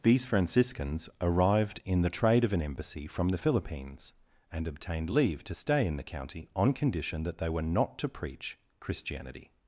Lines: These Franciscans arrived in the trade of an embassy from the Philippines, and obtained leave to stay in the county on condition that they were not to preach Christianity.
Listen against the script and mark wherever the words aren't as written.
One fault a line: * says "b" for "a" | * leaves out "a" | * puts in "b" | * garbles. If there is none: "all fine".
all fine